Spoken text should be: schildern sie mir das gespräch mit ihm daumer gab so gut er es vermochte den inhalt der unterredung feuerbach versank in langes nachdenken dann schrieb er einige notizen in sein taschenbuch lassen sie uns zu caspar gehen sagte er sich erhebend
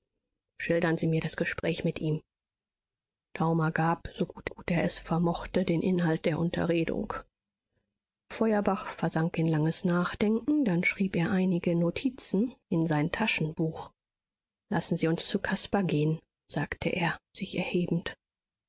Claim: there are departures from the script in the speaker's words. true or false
true